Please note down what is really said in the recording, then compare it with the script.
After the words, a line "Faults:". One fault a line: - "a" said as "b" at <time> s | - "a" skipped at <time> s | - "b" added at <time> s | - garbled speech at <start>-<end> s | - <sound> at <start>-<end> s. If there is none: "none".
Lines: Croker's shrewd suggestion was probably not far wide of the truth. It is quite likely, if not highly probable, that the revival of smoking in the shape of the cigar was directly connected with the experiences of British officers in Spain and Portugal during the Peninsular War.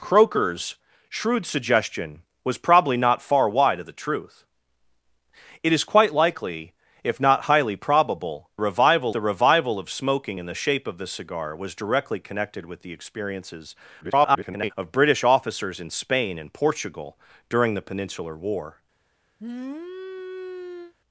Croker's shrewd suggestion was probably not far wide of the truth. It is quite likely, if not highly probable, revival the revival of smoking in the shape of the cigar was directly connected with the experiences [garbled] of British officers in Spain and Portugal during the Peninsular War.
Faults:
- "that" said as "revival" at 8.6 s
- garbled speech at 14.0-14.7 s
- sniff at 19.4-20.9 s